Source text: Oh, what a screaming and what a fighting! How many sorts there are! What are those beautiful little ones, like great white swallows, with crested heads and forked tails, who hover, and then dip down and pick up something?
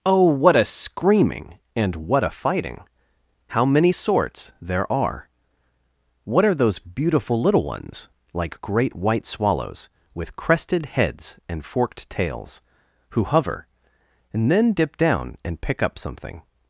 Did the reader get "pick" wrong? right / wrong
right